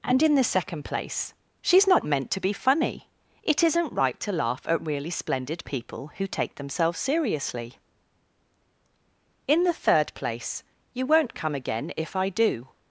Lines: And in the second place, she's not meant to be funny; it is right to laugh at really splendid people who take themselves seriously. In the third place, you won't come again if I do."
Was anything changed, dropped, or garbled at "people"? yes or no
no